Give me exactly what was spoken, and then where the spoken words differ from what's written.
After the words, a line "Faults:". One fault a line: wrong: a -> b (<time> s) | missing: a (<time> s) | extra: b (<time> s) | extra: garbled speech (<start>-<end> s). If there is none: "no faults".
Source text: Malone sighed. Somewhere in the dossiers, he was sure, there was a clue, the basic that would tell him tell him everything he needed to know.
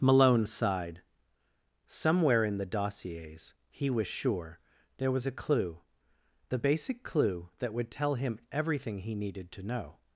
Malone sighed. Somewhere in the dossiers, he was sure, there was a clue, the basic clue that would tell him everything he needed to know.
Faults:
extra: clue (7.0 s)
missing: tell him (8.4 s)